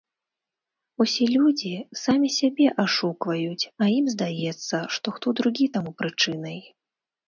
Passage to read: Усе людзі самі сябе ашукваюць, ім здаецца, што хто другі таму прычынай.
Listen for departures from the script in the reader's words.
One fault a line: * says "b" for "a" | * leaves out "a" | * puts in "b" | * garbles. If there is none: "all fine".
* puts in "а"